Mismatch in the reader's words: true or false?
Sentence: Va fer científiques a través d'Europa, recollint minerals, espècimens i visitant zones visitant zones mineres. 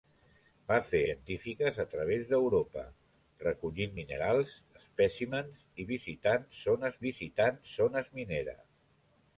false